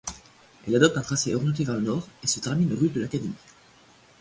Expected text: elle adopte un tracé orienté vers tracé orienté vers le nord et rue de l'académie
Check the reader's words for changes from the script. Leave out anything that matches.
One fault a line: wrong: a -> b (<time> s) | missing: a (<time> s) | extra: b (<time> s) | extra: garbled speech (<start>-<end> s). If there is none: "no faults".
missing: tracé orienté vers (1.8 s)
extra: se termine (2.3 s)